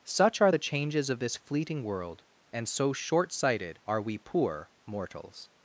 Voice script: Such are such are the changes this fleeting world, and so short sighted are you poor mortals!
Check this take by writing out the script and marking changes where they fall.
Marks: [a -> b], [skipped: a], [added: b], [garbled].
Such are [skipped: such are] the changes [added: of] this fleeting world, and so short sighted are [you -> we] poor mortals!